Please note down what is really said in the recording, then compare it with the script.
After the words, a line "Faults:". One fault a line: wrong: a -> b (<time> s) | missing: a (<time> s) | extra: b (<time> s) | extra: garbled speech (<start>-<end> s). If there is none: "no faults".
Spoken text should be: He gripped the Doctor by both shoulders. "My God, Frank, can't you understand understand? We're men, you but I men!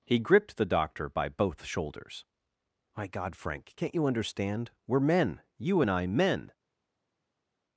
He gripped the Doctor by both shoulders. "My God, Frank, can't you understand? We're men, you and I men!
Faults:
missing: understand (4.7 s)
wrong: but -> and (5.8 s)